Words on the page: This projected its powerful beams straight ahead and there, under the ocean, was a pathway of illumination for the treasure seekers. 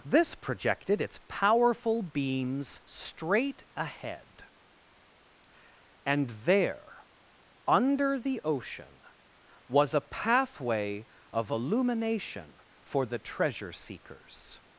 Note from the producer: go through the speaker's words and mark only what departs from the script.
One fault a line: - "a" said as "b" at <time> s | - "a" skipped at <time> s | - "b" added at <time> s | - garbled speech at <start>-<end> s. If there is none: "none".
none